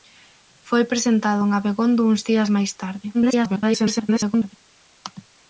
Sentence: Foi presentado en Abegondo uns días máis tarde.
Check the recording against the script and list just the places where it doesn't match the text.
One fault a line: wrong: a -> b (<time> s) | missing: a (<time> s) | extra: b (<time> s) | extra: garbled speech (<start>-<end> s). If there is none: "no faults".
extra: garbled speech (3.1-4.6 s)